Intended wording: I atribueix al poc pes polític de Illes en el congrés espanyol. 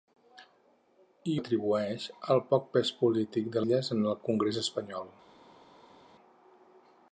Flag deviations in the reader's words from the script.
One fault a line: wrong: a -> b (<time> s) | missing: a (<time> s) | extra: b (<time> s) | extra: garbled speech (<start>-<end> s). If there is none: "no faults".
no faults